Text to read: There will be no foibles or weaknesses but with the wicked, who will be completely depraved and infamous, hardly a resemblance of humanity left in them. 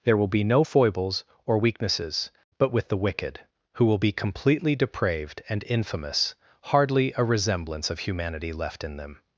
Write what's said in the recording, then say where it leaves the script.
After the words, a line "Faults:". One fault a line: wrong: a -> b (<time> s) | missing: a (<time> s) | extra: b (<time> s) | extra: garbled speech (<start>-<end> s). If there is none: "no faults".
There will be no foibles or weaknesses but with the wicked, who will be completely depraved and infamous, hardly a resemblance of humanity left in them.
Faults:
no faults